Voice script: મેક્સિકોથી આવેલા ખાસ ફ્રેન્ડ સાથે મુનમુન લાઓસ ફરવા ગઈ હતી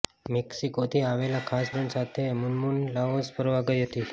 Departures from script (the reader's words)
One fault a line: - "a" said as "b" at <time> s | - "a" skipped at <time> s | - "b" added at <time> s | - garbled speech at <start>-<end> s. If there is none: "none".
none